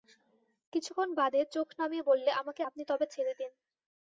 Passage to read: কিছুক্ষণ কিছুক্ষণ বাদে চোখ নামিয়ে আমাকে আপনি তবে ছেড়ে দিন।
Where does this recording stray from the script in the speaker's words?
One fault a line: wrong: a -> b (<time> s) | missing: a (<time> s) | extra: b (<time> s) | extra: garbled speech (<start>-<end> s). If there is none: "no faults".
missing: কিছুক্ষণ (1.1 s)
extra: বললে (2.0 s)